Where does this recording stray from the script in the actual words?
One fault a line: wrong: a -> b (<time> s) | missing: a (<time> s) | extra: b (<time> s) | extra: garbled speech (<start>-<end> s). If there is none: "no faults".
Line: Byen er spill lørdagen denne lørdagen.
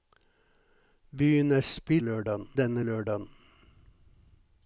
no faults